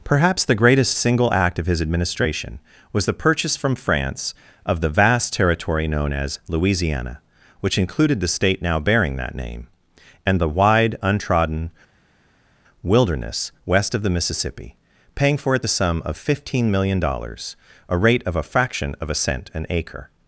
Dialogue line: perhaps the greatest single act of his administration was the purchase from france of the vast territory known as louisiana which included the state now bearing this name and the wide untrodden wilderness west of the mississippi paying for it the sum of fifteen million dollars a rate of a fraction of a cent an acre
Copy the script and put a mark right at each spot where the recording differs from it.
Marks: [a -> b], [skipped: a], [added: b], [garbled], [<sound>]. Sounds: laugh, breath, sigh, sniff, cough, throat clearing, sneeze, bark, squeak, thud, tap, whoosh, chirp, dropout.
perhaps the greatest single act of his administration was the purchase from france of the vast territory known as louisiana which included the state now bearing [this -> that] name and the wide untrodden wilderness west of the mississippi paying for it the sum of fifteen million dollars a rate of a fraction of a cent an acre